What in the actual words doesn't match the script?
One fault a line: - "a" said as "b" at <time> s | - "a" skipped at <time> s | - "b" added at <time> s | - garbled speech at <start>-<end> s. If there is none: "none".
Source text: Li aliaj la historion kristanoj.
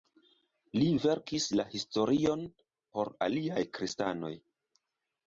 - "aliaj" said as "verkis" at 1.0 s
- "por aliaj" added at 3.0 s